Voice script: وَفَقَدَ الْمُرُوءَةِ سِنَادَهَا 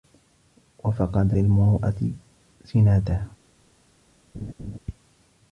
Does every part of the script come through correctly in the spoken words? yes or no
yes